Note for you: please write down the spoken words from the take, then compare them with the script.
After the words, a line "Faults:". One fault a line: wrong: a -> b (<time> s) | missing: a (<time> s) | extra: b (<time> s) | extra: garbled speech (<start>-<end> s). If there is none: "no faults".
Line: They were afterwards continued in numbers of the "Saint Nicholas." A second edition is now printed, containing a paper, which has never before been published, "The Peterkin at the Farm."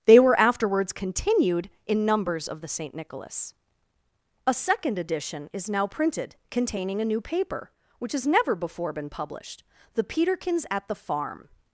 They were afterwards continued in numbers of the "Saint Nicholas." A second edition is now printed, containing a new paper, which has never before been published, "The Peterkins at the Farm."
Faults:
extra: new (7.1 s)
wrong: Peterkin -> Peterkins (10.1 s)